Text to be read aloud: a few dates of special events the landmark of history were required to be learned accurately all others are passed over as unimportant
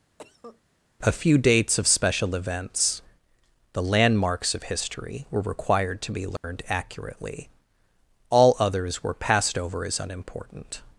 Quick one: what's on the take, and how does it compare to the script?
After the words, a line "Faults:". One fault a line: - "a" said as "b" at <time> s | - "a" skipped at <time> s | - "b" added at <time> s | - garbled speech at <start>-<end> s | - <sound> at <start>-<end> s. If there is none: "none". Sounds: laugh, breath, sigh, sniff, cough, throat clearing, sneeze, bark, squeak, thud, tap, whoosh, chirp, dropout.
a few dates of special events the landmarks of history were required to be learned accurately all others were passed over as unimportant
Faults:
- cough at 0.2-0.6 s
- "landmark" said as "landmarks" at 3.8 s
- dropout at 6.4-6.4 s
- "are" said as "were" at 9.0 s